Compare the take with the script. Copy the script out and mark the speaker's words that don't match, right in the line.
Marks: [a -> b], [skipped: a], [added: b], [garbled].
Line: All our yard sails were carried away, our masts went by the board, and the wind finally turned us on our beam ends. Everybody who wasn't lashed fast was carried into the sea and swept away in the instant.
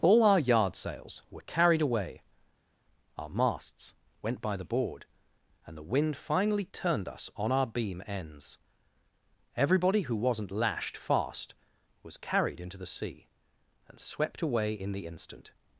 All our yard sails were carried away, our masts went by the board, and the wind finally turned us on our beam ends. Everybody who wasn't lashed fast was carried into the sea and swept away in the instant.